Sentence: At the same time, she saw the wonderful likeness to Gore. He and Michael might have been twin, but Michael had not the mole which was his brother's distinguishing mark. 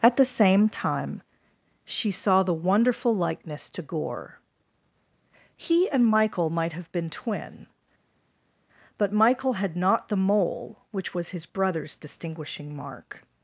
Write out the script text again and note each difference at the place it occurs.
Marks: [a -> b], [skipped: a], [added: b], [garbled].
At the same time, she saw the wonderful likeness to Gore. He and Michael might have been twin, but Michael had not the mole which was his brother's distinguishing mark.